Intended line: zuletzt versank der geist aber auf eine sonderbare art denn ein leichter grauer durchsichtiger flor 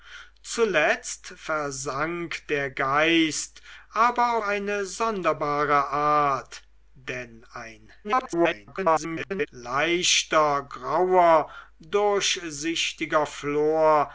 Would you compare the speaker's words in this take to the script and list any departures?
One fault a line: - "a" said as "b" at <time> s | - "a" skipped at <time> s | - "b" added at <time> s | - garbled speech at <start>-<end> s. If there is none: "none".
- "auf" skipped at 4.4 s
- garbled speech at 8.0-9.5 s